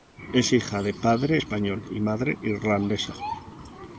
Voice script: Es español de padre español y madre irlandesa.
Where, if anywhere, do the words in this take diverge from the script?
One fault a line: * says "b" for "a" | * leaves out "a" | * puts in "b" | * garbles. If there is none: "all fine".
* says "hija" for "español"